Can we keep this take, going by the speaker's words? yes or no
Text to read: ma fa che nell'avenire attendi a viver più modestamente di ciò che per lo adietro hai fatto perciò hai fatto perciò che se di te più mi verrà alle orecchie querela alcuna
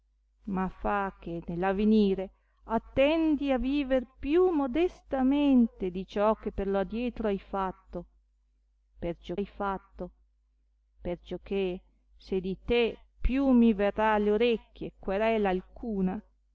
yes